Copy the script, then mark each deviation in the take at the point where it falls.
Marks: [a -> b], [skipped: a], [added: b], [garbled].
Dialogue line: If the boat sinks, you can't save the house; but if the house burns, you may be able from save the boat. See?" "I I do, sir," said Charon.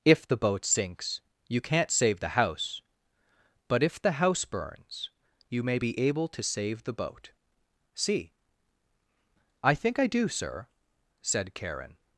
If the boat sinks, you can't save the house; but if the house burns, you may be able [from -> to] save the boat. See?" "I [added: think] I do, sir," said Charon.